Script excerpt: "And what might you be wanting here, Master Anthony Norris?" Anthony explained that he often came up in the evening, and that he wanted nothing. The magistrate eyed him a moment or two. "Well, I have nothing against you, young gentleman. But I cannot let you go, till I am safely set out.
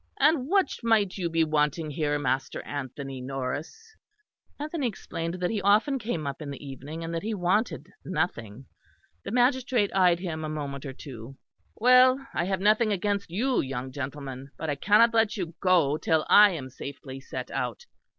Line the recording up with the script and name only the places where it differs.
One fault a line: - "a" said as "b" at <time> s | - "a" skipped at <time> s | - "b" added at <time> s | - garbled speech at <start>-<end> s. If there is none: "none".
none